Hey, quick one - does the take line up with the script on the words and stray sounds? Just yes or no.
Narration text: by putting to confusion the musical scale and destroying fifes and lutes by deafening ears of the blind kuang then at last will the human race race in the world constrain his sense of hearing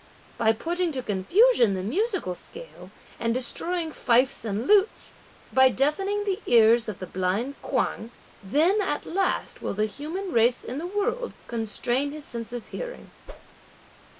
no